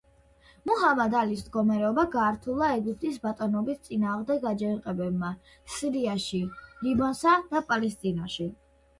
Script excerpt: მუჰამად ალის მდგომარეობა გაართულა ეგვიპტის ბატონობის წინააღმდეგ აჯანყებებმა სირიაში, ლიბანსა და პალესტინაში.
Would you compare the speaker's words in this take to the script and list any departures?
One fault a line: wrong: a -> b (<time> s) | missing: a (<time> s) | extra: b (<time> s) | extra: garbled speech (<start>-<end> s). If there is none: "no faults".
no faults